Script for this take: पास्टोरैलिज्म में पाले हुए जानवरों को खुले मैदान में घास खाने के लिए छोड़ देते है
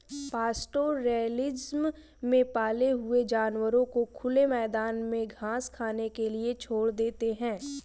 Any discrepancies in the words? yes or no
no